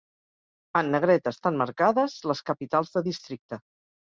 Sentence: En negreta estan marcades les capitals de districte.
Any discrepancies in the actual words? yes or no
no